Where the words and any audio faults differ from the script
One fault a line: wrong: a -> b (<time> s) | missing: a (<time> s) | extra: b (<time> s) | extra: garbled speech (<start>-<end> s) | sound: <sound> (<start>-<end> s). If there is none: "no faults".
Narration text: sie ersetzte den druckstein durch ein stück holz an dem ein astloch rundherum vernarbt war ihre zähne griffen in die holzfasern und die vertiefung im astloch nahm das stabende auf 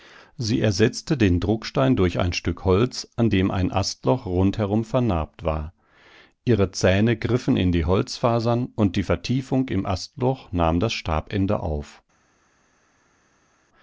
no faults